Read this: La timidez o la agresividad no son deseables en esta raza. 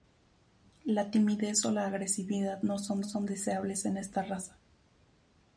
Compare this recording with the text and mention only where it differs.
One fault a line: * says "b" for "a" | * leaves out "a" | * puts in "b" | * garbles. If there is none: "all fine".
* puts in "son"